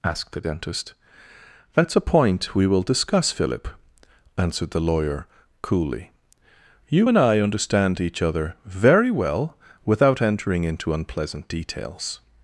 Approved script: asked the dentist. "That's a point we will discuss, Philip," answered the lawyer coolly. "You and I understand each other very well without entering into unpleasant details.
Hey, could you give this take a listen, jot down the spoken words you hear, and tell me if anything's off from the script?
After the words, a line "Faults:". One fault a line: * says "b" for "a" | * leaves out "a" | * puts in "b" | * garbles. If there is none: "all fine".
asked the dentist. "That's a point we will discuss, Philip," answered the lawyer coolly. "You and I understand each other very well without entering into unpleasant details.
Faults:
all fine